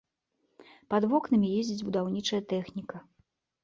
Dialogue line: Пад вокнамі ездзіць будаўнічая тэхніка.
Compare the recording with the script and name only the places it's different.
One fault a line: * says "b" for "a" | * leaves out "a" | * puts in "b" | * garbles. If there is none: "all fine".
all fine